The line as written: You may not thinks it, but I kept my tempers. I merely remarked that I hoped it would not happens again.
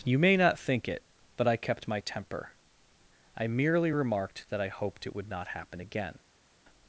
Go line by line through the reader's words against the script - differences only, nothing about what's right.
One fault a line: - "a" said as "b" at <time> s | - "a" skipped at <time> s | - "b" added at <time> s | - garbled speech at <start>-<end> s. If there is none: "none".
- "thinks" said as "think" at 0.6 s
- "tempers" said as "temper" at 2.0 s
- "happens" said as "happen" at 5.5 s